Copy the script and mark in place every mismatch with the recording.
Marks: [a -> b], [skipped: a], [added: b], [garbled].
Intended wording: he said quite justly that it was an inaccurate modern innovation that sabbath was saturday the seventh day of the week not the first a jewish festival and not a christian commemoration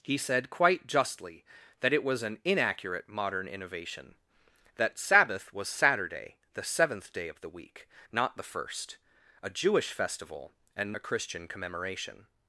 he said quite justly that it was an inaccurate modern innovation that sabbath was saturday the seventh day of the week not the first a jewish festival and [skipped: not] a christian commemoration